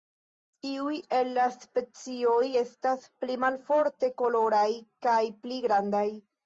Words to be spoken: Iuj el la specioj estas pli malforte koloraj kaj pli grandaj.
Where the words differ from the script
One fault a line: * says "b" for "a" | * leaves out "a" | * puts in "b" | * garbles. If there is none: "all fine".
all fine